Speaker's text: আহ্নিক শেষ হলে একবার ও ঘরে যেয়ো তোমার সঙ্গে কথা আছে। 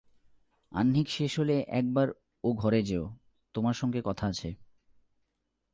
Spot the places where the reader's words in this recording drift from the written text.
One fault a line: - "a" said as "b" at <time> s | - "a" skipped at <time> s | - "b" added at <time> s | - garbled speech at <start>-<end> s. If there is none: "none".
none